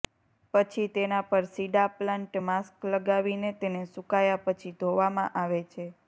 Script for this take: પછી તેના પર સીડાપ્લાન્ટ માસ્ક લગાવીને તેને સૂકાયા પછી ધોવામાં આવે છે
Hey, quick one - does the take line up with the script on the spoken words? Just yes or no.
yes